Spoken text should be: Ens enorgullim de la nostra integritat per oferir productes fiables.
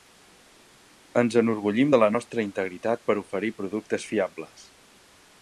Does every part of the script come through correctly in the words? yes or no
yes